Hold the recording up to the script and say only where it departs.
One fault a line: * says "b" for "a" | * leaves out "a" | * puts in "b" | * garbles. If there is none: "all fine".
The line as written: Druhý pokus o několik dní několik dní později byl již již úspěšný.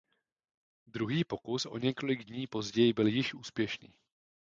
* leaves out "několik dní"
* leaves out "již"